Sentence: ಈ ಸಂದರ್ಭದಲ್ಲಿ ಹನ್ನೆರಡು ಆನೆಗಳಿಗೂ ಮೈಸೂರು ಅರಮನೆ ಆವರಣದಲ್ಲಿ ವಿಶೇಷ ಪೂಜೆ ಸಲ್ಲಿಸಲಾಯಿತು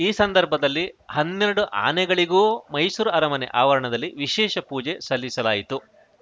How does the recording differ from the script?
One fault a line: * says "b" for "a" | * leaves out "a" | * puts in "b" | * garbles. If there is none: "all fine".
all fine